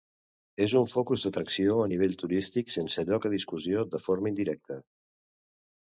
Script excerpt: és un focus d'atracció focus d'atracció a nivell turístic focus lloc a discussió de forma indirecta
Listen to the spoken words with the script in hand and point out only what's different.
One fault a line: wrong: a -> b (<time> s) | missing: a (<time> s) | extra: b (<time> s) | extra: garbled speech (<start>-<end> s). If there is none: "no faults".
missing: focus d'atracció (1.8 s)
wrong: focus -> sense (2.8 s)